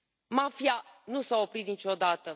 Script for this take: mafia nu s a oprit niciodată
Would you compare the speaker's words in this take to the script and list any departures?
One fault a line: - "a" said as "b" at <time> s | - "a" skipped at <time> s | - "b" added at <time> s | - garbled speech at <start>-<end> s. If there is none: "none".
none